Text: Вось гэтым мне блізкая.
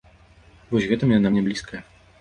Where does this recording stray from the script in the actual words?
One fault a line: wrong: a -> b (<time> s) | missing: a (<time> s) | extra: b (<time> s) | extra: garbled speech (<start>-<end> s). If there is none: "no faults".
extra: яна (1.2 s)